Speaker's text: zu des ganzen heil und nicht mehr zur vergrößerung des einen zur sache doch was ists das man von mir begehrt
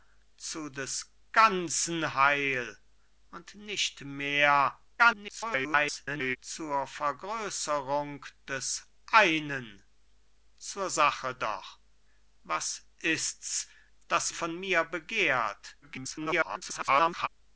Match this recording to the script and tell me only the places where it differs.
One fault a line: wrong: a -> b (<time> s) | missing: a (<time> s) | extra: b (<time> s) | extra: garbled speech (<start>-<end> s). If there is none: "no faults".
extra: garbled speech (5.0-6.4 s)
missing: man (14.3 s)
extra: garbled speech (15.8-17.3 s)